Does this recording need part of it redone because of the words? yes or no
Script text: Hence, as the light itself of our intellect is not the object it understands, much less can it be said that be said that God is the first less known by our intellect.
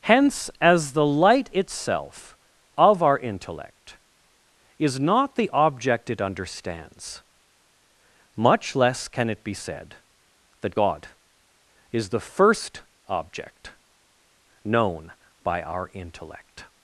yes